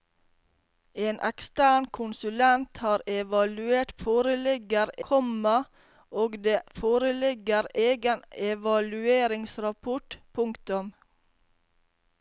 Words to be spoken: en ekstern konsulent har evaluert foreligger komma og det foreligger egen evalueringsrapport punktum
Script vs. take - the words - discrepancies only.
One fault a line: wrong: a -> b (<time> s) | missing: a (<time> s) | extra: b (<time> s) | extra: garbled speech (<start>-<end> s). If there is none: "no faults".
no faults